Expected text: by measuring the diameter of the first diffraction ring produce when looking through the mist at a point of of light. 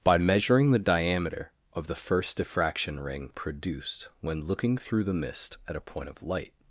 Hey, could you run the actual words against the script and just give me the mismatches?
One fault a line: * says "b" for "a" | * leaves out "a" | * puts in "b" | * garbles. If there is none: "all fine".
* says "produced" for "produce"
* leaves out "of"